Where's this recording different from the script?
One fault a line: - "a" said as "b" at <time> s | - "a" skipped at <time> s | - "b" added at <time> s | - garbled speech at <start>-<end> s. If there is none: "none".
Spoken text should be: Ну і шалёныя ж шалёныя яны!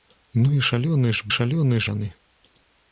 none